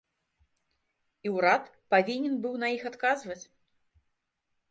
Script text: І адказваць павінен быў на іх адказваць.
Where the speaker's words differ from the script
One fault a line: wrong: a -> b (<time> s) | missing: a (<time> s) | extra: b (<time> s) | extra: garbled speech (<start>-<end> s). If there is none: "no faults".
wrong: адказваць -> ўрад (1.4 s)